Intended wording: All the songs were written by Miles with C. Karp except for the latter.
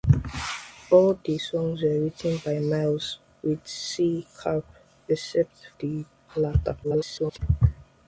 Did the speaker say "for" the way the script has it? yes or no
no